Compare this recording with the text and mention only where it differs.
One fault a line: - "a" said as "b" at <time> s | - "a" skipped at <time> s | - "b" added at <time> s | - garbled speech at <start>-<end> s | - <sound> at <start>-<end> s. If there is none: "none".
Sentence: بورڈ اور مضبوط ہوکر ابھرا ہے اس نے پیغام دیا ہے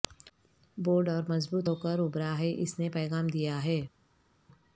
none